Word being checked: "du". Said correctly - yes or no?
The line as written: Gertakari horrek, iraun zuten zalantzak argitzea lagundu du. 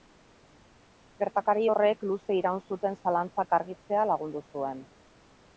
no